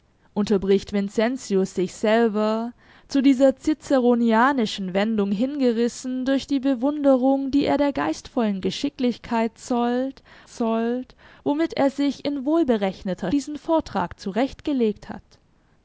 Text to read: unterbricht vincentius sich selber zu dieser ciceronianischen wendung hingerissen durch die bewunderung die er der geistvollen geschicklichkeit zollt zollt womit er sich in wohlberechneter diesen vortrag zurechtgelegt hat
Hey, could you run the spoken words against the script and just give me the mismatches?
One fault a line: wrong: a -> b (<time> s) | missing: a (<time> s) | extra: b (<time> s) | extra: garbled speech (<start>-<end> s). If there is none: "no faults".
no faults